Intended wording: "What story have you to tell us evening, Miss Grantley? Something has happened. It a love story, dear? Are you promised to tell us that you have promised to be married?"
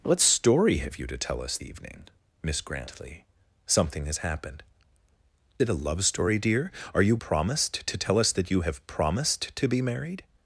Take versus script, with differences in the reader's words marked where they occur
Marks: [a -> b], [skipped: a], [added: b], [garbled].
"What story have you to tell us evening, Miss Grantley? Something has happened. It a love story, dear? Are you promised to tell us that you have promised to be married?"